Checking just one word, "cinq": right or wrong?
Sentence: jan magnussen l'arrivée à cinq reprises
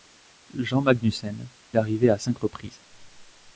right